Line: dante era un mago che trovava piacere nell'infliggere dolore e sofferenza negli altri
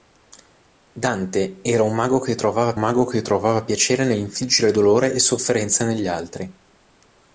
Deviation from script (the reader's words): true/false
true